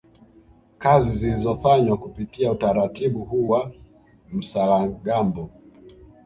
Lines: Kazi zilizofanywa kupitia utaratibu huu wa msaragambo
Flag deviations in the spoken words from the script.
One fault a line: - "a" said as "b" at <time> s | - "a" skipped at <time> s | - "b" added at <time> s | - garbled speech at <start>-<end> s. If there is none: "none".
none